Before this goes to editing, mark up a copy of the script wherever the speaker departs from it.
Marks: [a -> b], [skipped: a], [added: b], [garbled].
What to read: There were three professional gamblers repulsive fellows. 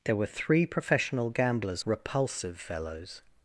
There were three professional gamblers repulsive fellows.